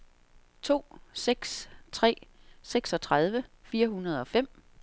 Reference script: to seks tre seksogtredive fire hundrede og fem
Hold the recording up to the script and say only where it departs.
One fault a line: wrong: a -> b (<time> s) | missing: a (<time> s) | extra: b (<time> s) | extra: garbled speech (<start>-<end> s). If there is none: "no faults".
no faults